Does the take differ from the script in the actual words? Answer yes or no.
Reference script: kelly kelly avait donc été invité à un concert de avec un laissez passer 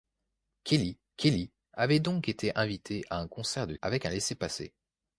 no